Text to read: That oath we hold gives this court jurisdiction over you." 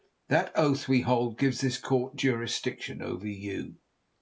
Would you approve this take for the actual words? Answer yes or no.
yes